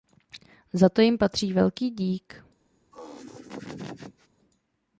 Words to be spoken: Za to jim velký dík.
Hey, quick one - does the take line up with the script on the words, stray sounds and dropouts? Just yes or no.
no